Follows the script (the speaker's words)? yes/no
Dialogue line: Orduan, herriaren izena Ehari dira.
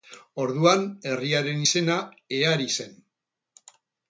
no